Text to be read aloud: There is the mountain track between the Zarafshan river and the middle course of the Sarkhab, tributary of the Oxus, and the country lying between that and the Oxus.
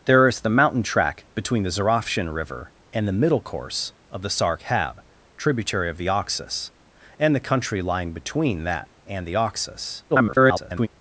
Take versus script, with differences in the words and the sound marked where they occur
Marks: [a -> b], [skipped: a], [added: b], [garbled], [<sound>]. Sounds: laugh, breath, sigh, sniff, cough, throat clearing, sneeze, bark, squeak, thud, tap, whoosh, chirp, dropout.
There is the mountain track between the Zarafshan river and the middle course of the Sarkhab, tributary of the Oxus, and the country lying between that and the Oxus. [garbled]